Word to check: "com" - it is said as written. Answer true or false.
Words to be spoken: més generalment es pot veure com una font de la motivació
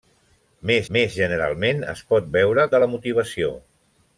false